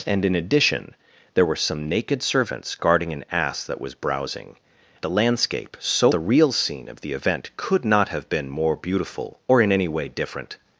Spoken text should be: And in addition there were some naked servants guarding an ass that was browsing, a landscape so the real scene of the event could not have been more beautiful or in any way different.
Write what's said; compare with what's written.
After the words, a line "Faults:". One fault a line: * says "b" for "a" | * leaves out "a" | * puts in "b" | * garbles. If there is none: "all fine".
And in addition there were some naked servants guarding an ass that was browsing, a landscape so the real scene of the event could not have been more beautiful or in any way different.
Faults:
all fine